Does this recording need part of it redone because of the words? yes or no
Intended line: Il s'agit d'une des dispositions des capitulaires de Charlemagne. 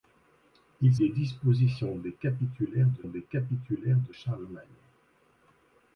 yes